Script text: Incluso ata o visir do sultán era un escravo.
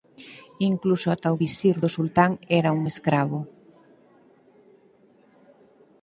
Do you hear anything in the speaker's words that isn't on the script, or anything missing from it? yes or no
no